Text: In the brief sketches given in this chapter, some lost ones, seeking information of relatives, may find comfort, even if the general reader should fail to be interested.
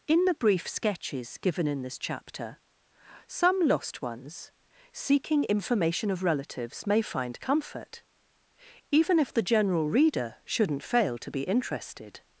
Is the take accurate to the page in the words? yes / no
no